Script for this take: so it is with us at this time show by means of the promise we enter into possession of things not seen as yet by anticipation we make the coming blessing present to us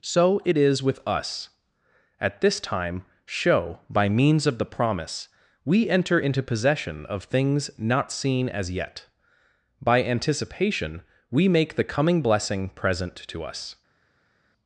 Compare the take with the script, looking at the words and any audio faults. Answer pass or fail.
pass